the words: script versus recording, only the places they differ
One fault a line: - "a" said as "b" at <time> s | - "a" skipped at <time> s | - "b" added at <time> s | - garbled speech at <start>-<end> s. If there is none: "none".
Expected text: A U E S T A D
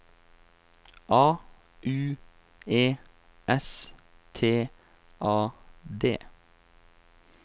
none